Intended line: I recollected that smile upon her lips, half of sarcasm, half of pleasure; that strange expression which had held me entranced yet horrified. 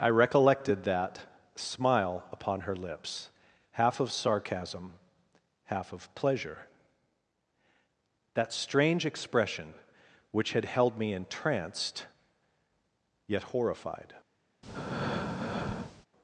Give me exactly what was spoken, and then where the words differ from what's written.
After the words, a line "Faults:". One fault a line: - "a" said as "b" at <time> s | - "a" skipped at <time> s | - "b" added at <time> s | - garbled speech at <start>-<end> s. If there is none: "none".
I recollected that smile upon her lips, half of sarcasm, half of pleasure; that strange expression which had held me entranced yet horrified.
Faults:
none